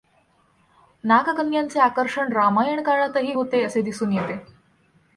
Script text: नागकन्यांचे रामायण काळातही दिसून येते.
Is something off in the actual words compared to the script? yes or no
yes